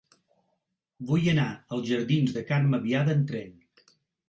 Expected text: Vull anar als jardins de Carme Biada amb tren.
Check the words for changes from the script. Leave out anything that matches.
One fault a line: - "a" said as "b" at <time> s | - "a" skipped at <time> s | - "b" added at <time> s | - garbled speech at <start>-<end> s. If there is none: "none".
none